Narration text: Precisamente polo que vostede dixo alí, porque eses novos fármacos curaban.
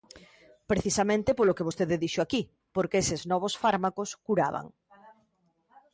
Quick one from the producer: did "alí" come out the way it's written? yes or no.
no